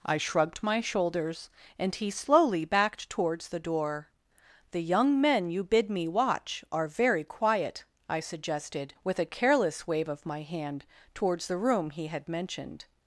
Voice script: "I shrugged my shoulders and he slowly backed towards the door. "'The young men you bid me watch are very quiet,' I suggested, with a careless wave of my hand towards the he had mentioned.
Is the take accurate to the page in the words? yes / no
no